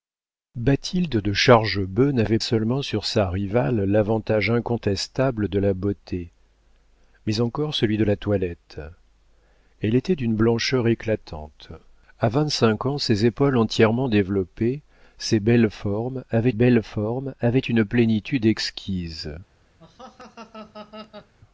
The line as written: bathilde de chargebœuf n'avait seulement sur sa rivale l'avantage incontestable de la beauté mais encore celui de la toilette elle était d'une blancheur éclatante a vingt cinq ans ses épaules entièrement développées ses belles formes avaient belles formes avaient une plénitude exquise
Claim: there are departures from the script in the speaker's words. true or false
false